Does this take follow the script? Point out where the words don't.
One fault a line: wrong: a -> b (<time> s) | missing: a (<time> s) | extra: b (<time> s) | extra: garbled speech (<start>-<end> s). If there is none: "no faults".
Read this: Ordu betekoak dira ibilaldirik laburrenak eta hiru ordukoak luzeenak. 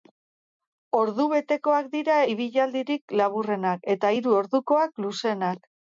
no faults